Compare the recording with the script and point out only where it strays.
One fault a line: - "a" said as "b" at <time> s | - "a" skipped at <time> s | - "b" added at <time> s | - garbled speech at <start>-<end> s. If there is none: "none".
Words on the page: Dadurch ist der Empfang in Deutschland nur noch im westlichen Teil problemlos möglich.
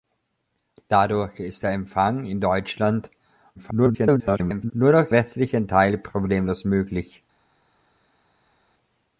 - garbled speech at 3.6-4.7 s
- "im" skipped at 5.1 s